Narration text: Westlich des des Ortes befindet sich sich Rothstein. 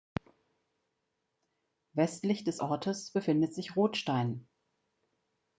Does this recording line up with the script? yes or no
no